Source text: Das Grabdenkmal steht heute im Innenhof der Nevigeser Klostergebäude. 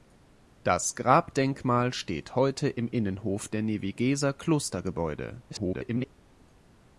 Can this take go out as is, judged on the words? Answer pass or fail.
fail